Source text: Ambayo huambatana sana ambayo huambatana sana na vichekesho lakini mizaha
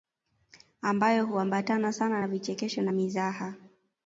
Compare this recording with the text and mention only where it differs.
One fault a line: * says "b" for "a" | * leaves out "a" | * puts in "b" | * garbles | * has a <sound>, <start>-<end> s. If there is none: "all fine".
* leaves out "ambayo huambatana sana"
* says "na" for "lakini"